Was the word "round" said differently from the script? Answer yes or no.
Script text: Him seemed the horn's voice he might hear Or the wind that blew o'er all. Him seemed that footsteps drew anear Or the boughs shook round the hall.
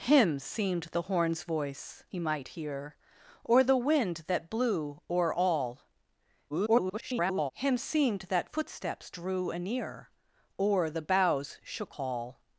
yes